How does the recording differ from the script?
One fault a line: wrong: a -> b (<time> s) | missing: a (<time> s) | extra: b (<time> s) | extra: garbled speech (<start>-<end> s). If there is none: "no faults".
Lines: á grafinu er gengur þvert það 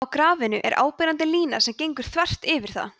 extra: áberandi lína sem (0.8 s)
extra: yfir (2.6 s)